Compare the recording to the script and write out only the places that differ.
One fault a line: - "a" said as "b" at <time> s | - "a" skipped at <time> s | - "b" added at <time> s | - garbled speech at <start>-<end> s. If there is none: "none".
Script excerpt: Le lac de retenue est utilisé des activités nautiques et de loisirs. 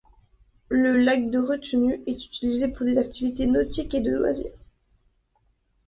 - "pour" added at 2.7 s